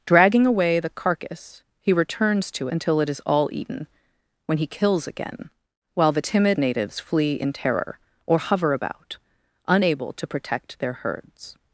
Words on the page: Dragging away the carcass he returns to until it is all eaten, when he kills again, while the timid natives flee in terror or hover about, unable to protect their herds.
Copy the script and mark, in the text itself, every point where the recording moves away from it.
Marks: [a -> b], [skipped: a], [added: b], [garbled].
Dragging away the carcass he returns to until it is all eaten, when he kills again, while the timid natives flee in terror or hover about, unable to protect their herds.